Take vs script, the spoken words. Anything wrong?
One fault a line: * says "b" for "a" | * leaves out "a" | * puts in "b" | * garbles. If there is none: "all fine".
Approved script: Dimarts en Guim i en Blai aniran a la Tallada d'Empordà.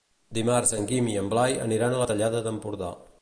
all fine